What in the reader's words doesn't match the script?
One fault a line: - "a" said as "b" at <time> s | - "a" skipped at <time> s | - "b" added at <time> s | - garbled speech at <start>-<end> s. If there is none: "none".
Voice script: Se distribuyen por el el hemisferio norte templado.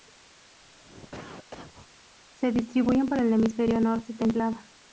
- "el" skipped at 3.3 s